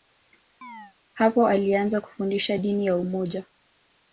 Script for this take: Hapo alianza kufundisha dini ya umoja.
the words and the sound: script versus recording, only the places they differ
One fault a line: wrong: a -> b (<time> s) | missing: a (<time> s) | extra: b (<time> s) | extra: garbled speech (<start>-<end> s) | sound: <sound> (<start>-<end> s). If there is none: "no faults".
sound: chirp (0.6-0.9 s)